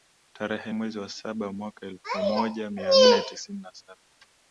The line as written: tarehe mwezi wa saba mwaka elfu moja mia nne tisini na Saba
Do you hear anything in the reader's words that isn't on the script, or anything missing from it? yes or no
no